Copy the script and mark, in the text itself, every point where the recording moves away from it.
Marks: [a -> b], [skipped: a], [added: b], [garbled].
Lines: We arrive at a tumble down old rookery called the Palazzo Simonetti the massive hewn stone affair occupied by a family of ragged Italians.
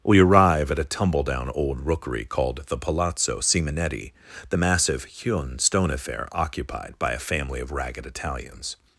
We arrive at a tumble down old rookery called the Palazzo Simonetti the massive hewn stone affair occupied by a family of ragged Italians.